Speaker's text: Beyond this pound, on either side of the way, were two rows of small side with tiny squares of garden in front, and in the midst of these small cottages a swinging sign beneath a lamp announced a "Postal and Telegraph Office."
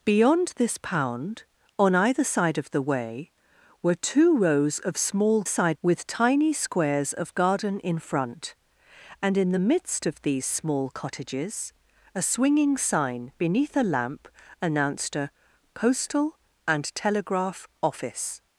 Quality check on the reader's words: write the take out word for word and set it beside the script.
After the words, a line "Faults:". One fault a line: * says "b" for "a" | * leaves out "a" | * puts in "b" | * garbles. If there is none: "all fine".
Beyond this pound, on either side of the way, were two rows of small side with tiny squares of garden in front, and in the midst of these small cottages a swinging sign beneath a lamp announced a "Postal and Telegraph Office."
Faults:
all fine